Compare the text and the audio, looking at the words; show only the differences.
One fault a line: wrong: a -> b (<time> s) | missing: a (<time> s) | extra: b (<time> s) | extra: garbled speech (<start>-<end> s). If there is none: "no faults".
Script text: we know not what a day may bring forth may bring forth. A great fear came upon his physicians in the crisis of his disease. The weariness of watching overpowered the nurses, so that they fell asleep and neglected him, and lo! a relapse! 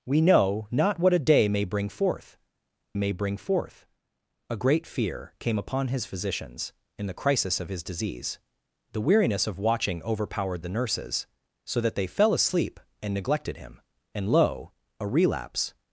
no faults